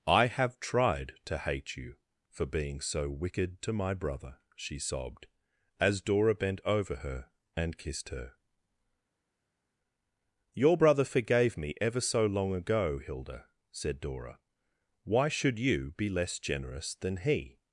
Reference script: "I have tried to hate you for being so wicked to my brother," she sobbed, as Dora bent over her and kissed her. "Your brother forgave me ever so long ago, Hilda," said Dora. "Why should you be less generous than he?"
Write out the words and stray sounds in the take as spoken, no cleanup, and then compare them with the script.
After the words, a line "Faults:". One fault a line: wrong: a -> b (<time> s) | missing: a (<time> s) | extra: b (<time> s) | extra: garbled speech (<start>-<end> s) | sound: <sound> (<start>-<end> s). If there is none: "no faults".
"I have tried to hate you for being so wicked to my brother," she sobbed, as Dora bent over her and kissed her. "Your brother forgave me ever so long ago, Hilda," said Dora. "Why should you be less generous than he?"
Faults:
no faults